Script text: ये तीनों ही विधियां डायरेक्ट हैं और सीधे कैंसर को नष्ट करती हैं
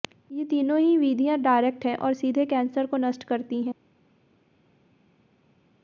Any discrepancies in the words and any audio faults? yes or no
no